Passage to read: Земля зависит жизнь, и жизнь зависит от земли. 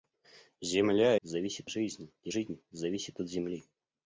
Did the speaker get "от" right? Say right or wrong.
right